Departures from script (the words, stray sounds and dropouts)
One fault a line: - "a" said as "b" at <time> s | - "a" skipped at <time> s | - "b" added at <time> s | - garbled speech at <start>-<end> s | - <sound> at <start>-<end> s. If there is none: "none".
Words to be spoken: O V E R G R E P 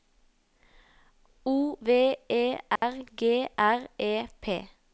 - dropout at 2.8-2.8 s